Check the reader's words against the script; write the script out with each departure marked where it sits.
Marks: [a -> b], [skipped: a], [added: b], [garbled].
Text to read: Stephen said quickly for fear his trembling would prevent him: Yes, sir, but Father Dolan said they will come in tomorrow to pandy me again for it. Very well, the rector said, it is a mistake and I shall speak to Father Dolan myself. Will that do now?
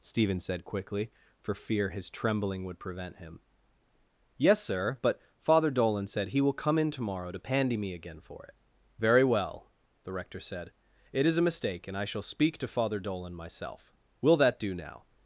Stephen said quickly for fear his trembling would prevent him: Yes, sir, but Father Dolan said [they -> he] will come in tomorrow to pandy me again for it. Very well, the rector said, it is a mistake and I shall speak to Father Dolan myself. Will that do now?